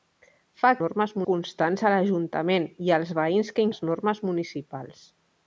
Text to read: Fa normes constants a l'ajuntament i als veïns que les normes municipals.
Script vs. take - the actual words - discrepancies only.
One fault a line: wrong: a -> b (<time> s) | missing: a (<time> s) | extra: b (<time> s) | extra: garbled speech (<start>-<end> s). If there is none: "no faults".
no faults